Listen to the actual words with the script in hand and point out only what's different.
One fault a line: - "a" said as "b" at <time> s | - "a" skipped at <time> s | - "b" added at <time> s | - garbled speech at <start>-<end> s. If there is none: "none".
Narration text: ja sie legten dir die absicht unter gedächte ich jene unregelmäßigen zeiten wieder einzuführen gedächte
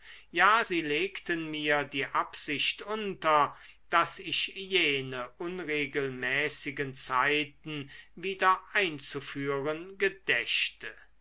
- "dir" said as "mir" at 1.5 s
- "gedächte" said as "daß" at 3.9 s